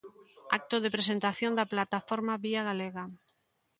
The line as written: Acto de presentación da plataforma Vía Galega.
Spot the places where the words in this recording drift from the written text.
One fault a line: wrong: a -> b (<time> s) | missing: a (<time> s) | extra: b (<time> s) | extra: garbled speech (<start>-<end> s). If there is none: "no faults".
no faults